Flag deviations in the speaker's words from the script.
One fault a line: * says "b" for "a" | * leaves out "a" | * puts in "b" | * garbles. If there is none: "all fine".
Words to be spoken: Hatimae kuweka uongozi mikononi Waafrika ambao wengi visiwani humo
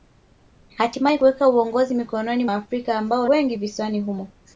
all fine